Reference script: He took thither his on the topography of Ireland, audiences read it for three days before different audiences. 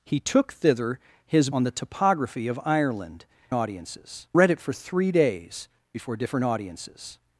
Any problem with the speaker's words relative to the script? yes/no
no